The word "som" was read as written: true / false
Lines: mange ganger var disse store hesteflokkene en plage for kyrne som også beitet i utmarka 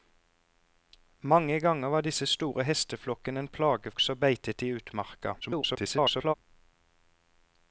false